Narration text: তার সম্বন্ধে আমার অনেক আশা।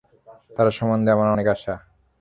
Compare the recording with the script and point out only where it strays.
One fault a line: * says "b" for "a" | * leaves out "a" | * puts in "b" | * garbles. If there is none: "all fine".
all fine